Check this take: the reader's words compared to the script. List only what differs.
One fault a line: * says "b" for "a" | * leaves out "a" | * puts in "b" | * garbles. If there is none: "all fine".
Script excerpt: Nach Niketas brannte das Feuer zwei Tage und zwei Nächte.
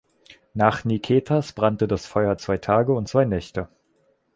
all fine